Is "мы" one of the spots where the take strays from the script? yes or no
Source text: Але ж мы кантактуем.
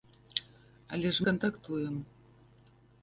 yes